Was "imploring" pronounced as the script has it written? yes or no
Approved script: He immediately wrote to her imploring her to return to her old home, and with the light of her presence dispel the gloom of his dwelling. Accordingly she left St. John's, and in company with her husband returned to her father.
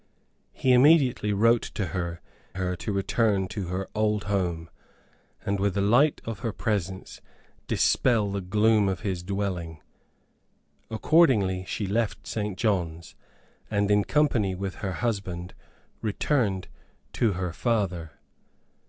no